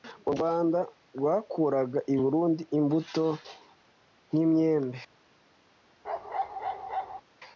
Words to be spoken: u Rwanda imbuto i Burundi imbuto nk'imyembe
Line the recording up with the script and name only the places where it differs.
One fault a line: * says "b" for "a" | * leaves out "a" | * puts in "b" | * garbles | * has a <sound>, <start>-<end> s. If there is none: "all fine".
* says "rwakuraga" for "imbuto"
* has a bark, 6.0-7.2 s